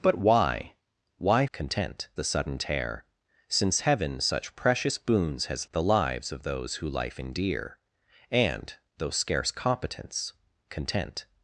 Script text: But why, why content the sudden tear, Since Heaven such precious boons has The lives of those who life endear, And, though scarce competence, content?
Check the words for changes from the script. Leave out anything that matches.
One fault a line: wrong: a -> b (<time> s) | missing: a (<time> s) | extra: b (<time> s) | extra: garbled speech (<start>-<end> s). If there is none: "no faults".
no faults